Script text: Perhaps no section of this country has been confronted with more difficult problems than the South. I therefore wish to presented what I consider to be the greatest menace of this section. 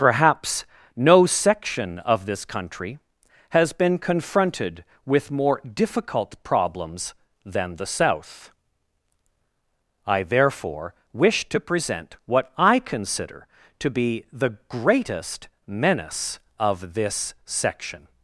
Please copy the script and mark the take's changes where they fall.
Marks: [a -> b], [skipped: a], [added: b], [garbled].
Perhaps no section of this country has been confronted with more difficult problems than the South. I therefore wish to [presented -> present] what I consider to be the greatest menace of this section.